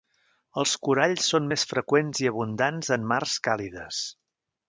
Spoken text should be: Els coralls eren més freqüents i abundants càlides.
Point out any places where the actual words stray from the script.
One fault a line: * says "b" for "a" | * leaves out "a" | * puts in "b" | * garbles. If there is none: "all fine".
* says "són" for "eren"
* puts in "en mars"